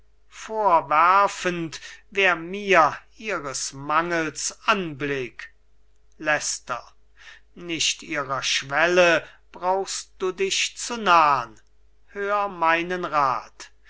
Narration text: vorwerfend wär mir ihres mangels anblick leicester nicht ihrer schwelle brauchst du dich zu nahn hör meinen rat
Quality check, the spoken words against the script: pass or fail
pass